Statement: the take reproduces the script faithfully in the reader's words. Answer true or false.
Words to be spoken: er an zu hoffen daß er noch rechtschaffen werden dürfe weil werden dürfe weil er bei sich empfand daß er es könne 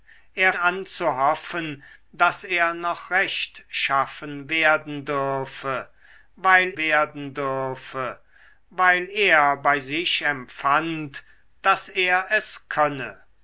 true